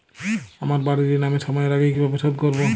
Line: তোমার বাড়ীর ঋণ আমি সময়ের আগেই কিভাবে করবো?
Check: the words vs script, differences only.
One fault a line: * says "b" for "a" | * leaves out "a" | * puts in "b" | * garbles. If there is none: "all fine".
* says "আমার" for "তোমার"
* puts in "শোধ"